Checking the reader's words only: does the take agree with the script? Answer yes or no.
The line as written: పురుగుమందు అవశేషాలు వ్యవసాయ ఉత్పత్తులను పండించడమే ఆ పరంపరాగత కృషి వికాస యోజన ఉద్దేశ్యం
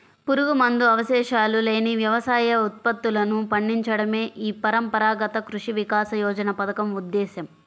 no